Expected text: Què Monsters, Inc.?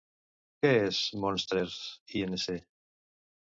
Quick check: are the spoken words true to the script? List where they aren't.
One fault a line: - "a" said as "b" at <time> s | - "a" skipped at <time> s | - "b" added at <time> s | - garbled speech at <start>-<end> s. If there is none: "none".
- "és" added at 0.8 s